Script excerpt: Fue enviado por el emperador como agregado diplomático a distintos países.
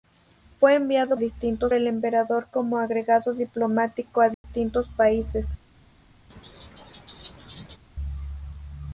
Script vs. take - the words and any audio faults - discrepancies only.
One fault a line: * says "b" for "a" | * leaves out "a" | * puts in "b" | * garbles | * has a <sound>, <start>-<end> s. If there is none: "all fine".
* says "distintos" for "por"
* has a dropout, 4.3-4.4 s
* has a laugh, 6.3-7.8 s